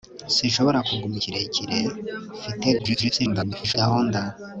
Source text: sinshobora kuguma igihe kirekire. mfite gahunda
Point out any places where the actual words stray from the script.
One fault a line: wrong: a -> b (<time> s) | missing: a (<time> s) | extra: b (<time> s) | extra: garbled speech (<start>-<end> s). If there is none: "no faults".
missing: igihe (1.1 s)
extra: garbled speech (2.8-3.7 s)